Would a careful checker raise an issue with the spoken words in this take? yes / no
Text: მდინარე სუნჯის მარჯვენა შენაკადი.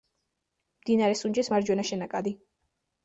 no